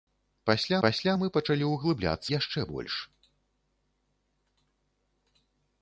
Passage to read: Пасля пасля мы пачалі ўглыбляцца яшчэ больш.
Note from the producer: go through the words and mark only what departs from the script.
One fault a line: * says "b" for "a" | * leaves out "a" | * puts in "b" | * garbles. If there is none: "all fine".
all fine